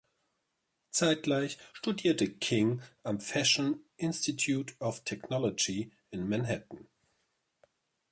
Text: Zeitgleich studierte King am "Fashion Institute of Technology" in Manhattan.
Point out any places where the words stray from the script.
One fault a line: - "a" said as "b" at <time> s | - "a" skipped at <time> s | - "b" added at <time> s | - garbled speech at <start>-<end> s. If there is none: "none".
none